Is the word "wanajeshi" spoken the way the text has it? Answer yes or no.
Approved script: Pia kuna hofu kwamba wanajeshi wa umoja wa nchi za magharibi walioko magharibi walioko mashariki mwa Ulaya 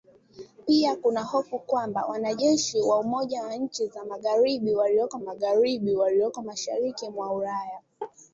yes